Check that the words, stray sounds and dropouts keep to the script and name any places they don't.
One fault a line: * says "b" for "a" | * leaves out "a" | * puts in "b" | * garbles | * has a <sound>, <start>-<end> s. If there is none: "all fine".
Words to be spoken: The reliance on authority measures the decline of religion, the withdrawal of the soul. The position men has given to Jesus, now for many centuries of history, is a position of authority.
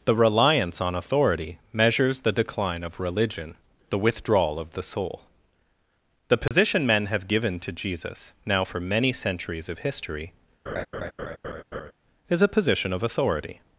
* has a dropout, 6.5-6.5 s
* says "have" for "has"
* has a laugh, 10.7-11.9 s